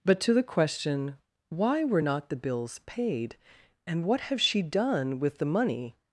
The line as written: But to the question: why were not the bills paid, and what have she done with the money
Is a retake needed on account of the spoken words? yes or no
no